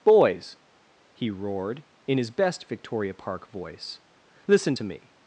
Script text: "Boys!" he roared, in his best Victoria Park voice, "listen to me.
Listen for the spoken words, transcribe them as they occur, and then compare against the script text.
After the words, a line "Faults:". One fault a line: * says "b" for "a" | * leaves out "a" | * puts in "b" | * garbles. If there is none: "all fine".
"Boys!" he roared, in his best Victoria Park voice, "listen to me.
Faults:
all fine